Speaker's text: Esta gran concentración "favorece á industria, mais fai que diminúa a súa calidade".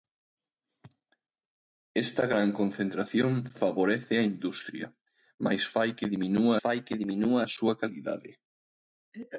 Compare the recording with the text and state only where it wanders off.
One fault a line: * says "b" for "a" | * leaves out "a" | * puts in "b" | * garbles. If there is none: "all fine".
* puts in "fai que diminúa"